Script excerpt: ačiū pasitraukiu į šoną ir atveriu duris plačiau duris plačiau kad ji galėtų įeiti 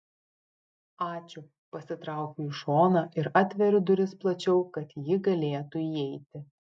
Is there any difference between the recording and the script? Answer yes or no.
yes